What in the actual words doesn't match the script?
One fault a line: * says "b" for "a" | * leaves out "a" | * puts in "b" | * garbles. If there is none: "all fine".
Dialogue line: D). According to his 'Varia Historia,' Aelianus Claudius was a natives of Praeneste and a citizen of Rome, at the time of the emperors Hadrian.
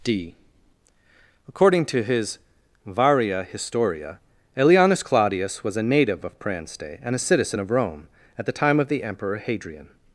* says "native" for "natives"
* says "emperor" for "emperors"